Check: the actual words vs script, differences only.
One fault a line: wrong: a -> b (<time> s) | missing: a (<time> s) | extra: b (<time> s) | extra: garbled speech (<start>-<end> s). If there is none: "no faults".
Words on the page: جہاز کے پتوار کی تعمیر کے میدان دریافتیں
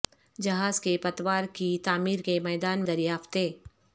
no faults